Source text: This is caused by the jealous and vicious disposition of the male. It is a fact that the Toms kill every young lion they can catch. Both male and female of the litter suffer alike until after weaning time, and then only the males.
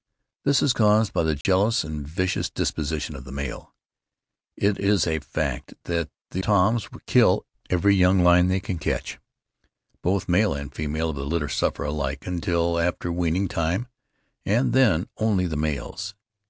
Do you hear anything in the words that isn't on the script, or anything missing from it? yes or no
no